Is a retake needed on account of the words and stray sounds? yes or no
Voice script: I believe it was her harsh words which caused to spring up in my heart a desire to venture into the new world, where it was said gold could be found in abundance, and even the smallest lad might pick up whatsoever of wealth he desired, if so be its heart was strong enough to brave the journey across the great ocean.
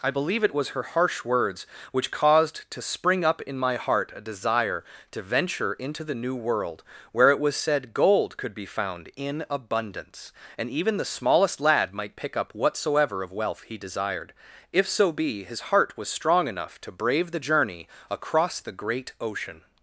yes